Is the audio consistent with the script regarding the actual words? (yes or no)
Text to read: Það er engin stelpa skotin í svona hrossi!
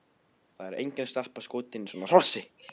yes